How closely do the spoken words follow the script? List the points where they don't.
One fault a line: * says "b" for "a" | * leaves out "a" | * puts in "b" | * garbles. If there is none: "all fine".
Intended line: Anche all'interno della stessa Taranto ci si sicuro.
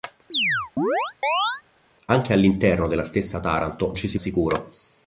all fine